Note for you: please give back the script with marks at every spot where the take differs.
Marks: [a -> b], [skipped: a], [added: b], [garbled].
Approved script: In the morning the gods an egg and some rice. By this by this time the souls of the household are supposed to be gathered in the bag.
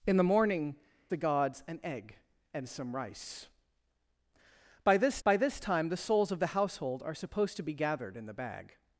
In the morning the gods an egg and some rice. By this by this time the souls of the household are supposed to be gathered in the bag.